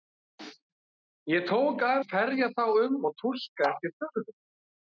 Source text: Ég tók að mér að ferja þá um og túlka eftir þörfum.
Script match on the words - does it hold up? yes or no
no